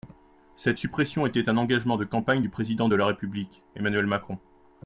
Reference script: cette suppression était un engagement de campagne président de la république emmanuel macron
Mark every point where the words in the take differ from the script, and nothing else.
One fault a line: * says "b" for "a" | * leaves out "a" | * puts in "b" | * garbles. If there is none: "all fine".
* puts in "du"